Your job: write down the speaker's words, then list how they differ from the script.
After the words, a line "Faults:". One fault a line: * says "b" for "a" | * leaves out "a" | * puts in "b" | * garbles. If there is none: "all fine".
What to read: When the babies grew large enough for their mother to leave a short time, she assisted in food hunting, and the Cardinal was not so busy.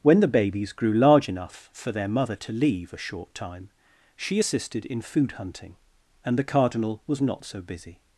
When the babies grew large enough for their mother to leave a short time, she assisted in food hunting, and the Cardinal was not so busy.
Faults:
all fine